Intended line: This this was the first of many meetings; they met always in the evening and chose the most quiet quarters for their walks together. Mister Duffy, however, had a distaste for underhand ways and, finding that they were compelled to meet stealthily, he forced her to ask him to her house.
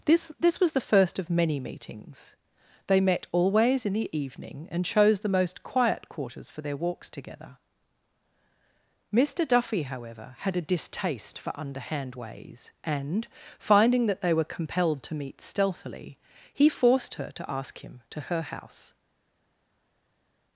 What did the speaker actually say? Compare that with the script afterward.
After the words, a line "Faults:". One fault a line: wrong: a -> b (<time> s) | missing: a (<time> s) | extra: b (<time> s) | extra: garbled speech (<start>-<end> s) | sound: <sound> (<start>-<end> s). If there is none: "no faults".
This this was the first of many meetings; they met always in the evening and chose the most quiet quarters for their walks together. Mister Duffy, however, had a distaste for underhand ways and, finding that they were compelled to meet stealthily, he forced her to ask him to her house.
Faults:
no faults